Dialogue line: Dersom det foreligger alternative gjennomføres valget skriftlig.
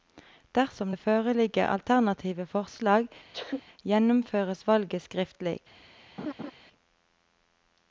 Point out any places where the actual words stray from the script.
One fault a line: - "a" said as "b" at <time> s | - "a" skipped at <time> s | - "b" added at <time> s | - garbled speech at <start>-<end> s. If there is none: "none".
- "forslag" added at 2.5 s